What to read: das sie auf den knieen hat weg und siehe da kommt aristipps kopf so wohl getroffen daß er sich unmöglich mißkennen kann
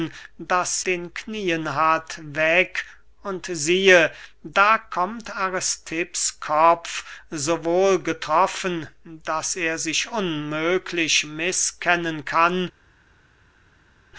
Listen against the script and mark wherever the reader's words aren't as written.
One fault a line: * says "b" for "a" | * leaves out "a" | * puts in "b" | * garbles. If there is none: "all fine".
* leaves out "sie auf"